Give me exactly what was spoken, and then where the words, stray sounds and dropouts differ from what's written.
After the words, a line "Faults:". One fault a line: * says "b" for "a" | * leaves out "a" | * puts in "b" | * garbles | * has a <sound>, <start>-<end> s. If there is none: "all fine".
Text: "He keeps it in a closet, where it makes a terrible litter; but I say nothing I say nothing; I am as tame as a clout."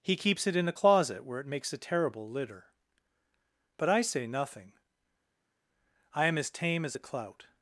"He keeps it in a closet, where it makes a terrible litter; but I say nothing; I am as tame as a clout."
Faults:
* leaves out "say nothing I"